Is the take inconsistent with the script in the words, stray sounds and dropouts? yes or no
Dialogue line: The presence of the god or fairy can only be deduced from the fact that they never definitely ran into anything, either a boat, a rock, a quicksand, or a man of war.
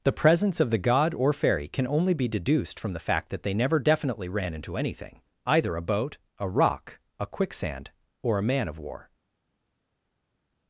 no